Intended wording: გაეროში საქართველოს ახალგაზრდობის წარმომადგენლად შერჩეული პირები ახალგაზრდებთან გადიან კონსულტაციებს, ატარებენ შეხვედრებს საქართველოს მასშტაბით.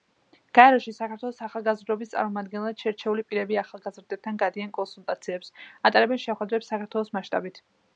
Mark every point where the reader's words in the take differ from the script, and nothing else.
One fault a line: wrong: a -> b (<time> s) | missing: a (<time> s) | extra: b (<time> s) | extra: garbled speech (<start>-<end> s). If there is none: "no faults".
no faults